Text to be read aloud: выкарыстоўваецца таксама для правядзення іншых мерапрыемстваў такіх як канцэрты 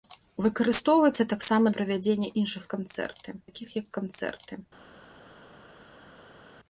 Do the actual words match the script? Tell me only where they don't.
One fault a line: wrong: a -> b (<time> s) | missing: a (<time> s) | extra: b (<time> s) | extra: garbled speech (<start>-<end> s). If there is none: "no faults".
missing: для (1.8 s)
wrong: мерапрыемстваў -> канцэрты (2.8 s)